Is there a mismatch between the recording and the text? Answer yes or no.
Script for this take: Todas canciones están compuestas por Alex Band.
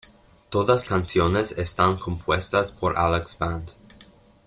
no